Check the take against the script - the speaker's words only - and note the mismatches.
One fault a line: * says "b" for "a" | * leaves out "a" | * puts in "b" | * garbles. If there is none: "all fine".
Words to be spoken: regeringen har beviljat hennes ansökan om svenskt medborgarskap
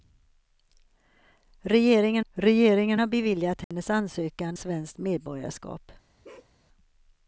* puts in "regeringen"
* leaves out "om"